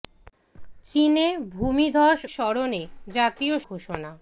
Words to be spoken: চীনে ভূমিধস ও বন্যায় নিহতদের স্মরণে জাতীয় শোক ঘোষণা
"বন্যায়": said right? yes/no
no